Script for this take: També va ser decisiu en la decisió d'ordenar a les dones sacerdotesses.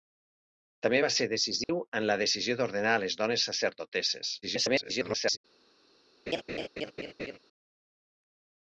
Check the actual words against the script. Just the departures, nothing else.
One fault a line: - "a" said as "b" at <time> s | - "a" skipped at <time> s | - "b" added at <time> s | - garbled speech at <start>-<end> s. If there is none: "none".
- garbled speech at 4.4-5.4 s